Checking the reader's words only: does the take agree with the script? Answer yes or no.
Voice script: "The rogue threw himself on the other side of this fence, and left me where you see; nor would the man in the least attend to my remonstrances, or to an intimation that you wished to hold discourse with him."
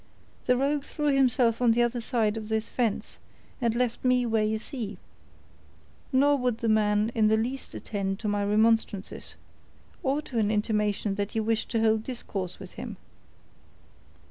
yes